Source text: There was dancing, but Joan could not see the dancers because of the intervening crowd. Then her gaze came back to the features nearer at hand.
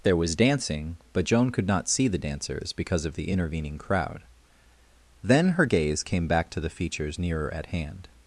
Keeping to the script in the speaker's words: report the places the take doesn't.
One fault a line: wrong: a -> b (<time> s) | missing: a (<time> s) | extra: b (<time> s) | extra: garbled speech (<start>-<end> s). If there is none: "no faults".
no faults